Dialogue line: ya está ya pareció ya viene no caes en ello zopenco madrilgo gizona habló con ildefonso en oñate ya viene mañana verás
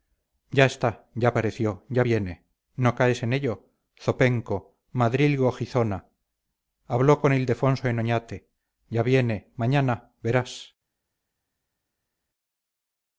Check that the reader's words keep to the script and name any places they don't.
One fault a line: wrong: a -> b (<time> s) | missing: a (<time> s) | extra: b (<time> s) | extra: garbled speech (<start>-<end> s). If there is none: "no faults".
no faults